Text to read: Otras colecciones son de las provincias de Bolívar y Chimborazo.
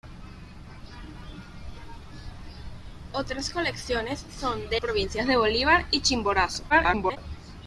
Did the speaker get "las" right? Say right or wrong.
wrong